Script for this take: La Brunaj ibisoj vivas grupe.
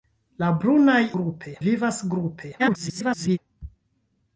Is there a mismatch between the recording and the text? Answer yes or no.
yes